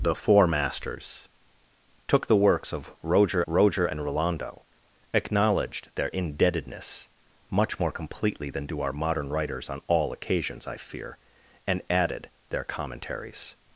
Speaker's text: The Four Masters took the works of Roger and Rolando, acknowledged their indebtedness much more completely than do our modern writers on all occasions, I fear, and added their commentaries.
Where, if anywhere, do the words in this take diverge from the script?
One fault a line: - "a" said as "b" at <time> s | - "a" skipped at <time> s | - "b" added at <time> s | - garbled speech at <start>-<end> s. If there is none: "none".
- "Roger" added at 3.5 s